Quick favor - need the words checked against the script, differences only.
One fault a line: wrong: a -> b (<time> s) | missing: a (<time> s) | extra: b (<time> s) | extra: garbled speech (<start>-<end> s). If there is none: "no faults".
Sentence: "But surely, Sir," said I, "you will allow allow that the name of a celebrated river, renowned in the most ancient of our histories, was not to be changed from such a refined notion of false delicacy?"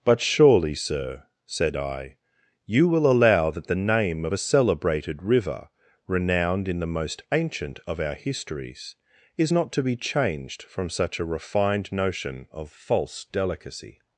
missing: allow (3.5 s)
wrong: was -> is (9.4 s)